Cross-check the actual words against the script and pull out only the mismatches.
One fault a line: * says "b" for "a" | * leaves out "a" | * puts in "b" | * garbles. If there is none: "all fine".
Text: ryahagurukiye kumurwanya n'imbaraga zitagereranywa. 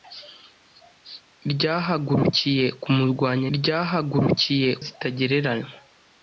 * says "ryahagurukiye" for "n'imbaraga"